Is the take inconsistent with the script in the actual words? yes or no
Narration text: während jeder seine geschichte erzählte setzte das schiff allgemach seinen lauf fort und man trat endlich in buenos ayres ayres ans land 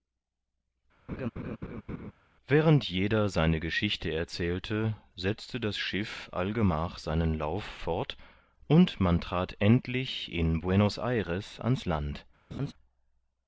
yes